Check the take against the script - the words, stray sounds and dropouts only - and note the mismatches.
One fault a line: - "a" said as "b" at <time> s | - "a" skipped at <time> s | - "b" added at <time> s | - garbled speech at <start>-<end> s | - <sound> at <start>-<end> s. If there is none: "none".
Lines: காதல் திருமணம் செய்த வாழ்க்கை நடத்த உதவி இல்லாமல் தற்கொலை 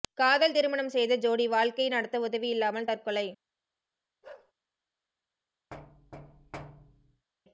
- "ஜோடி" added at 1.2 s
- bark at 4.2-4.5 s
- thud at 5.7-7.3 s